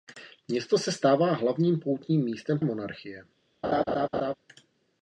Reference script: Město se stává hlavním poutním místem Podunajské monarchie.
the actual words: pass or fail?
fail